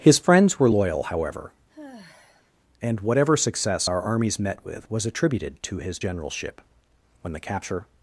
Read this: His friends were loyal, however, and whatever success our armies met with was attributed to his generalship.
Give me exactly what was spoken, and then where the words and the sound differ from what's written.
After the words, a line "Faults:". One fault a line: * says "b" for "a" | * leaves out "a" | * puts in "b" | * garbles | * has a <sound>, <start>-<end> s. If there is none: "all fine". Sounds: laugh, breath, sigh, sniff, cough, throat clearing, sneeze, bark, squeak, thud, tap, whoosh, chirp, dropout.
His friends were loyal, however, and whatever success our armies met with was attributed to his generalship. When the capture
Faults:
* has a sigh, 1.7-2.5 s
* puts in "When the capture"